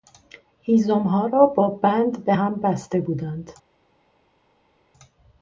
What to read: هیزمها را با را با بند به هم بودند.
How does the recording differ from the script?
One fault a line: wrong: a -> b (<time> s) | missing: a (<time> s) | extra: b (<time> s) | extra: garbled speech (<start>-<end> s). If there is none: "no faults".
missing: را با (1.7 s)
extra: بسته (2.5 s)